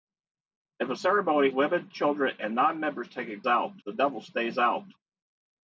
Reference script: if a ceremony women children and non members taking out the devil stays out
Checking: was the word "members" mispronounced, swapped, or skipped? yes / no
no